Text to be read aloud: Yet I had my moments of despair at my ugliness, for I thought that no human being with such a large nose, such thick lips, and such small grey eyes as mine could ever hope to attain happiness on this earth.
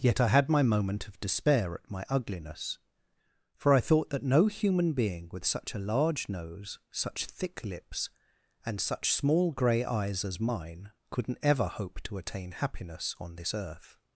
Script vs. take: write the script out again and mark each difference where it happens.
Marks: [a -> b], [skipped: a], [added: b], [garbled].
Yet I had my [moments -> moment] of despair at my ugliness, for I thought that no human being with such a large nose, such thick lips, and such small grey eyes as mine [could -> couldn't] ever hope to attain happiness on this earth.